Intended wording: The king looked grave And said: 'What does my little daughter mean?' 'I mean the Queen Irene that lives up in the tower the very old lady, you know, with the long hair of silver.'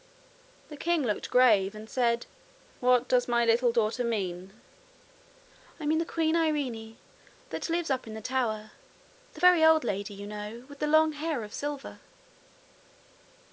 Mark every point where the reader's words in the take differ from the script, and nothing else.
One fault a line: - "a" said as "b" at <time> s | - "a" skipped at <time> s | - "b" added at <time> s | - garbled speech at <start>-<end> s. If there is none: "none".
none